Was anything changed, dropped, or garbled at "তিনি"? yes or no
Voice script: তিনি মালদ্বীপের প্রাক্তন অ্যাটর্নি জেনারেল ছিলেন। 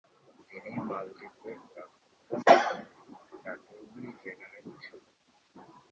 no